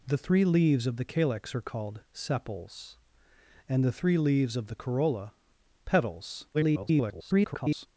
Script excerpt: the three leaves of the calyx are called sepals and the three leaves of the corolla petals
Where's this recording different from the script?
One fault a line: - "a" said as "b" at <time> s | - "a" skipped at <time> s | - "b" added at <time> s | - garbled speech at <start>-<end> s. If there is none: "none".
- garbled speech at 6.5-7.9 s